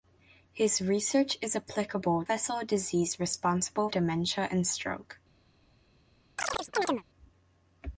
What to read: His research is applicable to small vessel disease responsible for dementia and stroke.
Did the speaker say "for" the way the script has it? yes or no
no